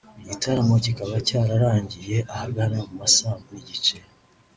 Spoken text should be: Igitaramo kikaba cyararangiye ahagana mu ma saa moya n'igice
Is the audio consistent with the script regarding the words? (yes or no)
no